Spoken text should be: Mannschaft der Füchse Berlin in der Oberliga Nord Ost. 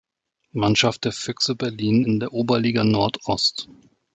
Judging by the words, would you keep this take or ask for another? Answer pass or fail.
pass